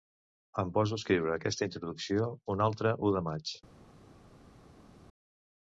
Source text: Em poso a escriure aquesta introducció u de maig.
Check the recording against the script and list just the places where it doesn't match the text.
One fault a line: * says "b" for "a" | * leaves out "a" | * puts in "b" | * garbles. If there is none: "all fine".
* puts in "un altre"